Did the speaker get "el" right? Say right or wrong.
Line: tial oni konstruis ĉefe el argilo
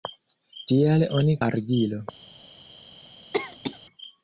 wrong